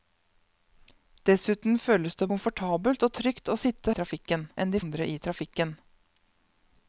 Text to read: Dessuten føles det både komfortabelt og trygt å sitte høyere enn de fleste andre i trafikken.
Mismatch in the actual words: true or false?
true